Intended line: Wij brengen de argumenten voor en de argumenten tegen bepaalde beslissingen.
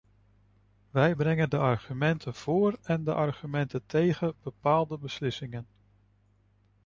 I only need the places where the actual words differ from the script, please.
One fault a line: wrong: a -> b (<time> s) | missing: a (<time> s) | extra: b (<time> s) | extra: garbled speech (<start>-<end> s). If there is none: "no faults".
no faults